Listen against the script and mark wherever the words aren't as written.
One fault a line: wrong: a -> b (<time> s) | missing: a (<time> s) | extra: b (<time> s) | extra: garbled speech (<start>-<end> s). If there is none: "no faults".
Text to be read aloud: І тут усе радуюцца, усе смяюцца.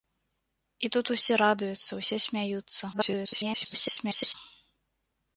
extra: garbled speech (2.9-4.3 s)